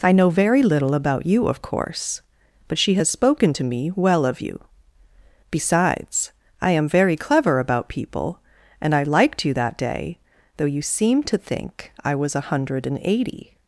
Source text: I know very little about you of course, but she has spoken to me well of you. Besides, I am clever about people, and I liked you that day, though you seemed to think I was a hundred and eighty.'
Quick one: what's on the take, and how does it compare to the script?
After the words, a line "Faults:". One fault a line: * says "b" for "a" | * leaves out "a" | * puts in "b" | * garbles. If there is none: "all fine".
I know very little about you of course, but she has spoken to me well of you. Besides, I am very clever about people, and I liked you that day, though you seemed to think I was a hundred and eighty.'
Faults:
* puts in "very"